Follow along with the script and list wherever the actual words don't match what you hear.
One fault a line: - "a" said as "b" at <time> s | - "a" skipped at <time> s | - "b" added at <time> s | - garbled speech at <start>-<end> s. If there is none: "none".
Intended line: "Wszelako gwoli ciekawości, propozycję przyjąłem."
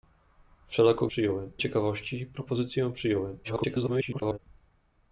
- "gwoli" said as "przyjąłem" at 1.1 s
- garbled speech at 3.4-4.4 s